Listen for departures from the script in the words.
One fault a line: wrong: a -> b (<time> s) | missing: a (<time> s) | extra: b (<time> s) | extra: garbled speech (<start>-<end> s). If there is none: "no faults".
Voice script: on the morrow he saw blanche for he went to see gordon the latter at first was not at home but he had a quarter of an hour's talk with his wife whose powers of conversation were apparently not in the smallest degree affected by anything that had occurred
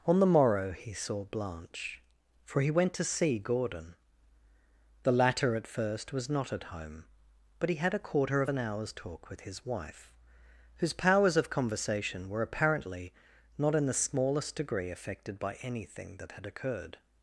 no faults